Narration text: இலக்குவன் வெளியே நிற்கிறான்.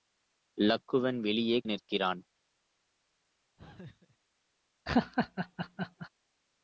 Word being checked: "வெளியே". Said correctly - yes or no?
yes